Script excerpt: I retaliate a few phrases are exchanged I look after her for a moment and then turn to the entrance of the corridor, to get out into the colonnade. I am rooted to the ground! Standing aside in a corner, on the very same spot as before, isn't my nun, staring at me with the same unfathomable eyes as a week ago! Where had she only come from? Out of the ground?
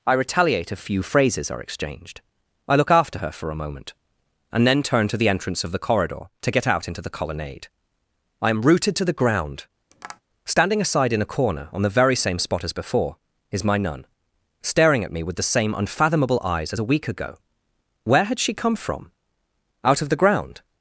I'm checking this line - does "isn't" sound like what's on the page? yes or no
no